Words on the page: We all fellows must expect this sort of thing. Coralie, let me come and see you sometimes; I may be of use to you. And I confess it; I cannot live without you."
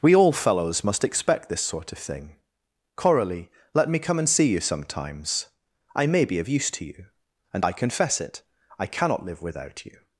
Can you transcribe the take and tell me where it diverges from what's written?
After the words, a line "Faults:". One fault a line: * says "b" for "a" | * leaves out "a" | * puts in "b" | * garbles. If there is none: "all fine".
We all fellows must expect this sort of thing. Coralie, let me come and see you sometimes; I may be of use to you. And I confess it; I cannot live without you."
Faults:
all fine